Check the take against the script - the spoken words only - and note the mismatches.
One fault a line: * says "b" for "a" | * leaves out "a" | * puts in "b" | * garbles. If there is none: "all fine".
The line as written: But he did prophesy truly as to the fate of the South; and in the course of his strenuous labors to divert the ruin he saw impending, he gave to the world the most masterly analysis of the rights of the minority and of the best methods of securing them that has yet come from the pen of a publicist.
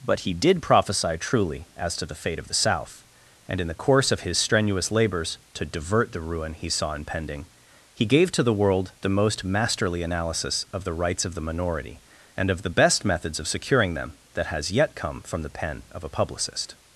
all fine